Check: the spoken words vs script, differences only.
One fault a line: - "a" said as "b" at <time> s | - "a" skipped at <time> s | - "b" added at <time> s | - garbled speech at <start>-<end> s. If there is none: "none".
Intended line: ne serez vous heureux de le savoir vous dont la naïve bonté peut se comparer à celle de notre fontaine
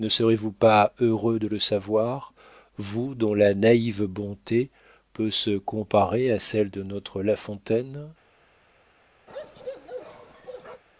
- "pas" added at 0.5 s
- "la" added at 7.2 s